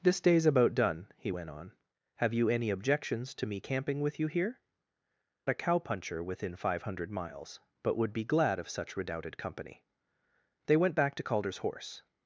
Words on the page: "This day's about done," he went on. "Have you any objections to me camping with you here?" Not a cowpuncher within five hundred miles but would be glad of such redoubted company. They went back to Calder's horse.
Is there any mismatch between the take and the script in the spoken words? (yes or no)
yes